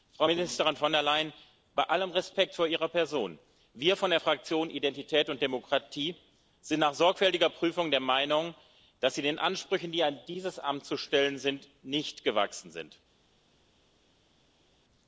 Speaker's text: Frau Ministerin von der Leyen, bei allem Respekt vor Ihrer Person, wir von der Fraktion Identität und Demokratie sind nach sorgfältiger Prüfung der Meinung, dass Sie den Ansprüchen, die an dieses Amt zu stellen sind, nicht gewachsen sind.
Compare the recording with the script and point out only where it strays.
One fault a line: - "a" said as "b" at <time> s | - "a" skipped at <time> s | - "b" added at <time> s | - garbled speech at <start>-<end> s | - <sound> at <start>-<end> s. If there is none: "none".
none